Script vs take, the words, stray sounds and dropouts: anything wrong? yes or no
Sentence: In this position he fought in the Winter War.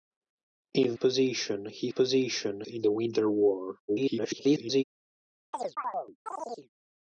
yes